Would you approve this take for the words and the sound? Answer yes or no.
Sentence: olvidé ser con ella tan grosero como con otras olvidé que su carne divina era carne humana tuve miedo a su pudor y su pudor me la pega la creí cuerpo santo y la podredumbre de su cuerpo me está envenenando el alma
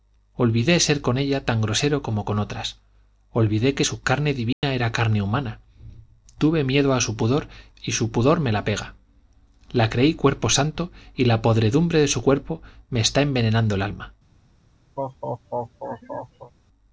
no